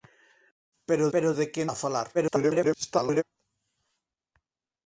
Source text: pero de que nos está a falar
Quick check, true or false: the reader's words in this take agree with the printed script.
false